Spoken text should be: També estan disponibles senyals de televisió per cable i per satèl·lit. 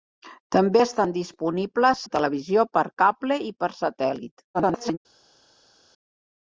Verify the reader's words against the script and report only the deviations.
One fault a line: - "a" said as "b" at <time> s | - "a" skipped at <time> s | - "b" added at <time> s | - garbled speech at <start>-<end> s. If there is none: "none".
- "senyals" skipped at 2.0 s
- garbled speech at 4.5-5.0 s